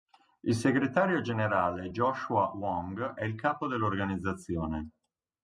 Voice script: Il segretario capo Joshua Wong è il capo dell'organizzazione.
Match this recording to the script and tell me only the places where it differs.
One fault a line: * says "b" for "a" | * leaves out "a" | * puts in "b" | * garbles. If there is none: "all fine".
* says "generale" for "capo"